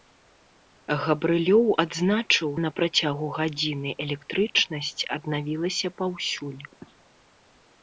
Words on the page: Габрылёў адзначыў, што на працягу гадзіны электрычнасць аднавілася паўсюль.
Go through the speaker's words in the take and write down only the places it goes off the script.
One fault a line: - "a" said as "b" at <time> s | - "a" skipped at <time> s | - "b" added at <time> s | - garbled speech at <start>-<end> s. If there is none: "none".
- "што" skipped at 2.5 s